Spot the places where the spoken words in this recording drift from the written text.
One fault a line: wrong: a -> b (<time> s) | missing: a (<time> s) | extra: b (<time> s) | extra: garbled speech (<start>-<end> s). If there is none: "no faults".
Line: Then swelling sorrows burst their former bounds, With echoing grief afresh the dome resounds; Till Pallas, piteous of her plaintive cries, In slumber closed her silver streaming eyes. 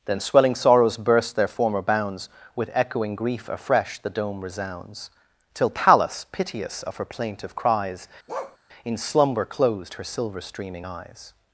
no faults